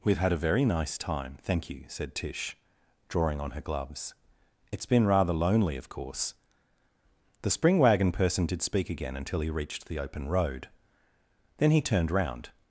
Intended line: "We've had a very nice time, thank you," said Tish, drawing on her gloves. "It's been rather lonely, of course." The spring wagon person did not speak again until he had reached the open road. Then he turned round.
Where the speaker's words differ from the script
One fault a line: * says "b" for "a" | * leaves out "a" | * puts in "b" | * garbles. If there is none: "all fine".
* leaves out "not"
* leaves out "had"